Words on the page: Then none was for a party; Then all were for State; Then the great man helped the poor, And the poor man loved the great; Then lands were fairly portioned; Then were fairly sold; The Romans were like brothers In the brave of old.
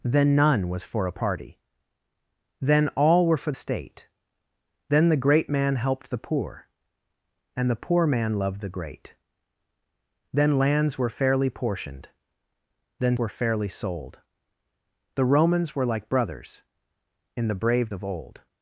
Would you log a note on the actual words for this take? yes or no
no